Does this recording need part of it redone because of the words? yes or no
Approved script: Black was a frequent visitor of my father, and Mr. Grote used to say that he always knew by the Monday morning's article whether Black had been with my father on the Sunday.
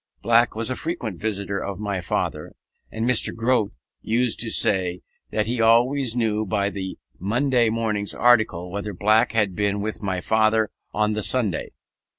no